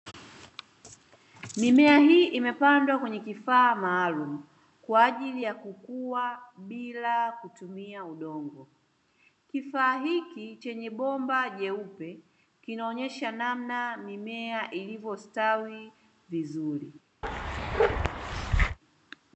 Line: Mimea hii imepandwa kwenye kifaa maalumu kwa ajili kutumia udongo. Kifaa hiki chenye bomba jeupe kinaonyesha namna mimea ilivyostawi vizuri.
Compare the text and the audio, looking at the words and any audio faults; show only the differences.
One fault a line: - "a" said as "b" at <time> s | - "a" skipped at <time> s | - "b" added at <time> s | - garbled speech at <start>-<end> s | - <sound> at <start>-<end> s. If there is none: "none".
- "ya kukua bila" added at 5.4 s
- bark at 17.2-18.8 s